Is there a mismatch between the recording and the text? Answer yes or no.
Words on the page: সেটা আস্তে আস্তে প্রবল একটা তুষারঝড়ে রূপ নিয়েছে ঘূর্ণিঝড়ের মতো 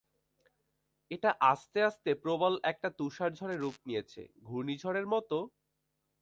yes